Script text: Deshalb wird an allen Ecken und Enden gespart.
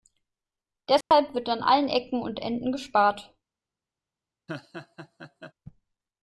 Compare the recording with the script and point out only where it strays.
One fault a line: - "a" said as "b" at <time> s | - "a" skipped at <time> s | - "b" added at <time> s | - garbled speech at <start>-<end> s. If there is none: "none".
none